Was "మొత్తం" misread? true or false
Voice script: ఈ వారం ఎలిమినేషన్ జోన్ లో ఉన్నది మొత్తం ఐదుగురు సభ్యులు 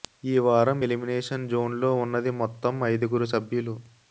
false